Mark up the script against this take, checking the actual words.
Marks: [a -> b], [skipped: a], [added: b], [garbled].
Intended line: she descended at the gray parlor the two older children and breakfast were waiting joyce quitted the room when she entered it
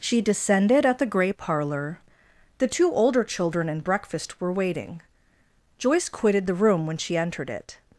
she descended at the gray parlor the two older children and breakfast were waiting joyce quitted the room when she entered it